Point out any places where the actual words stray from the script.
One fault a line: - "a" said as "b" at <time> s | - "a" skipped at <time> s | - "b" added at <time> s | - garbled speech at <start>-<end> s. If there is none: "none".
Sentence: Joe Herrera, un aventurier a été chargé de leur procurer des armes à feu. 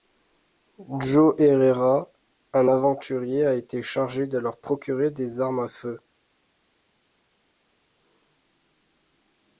none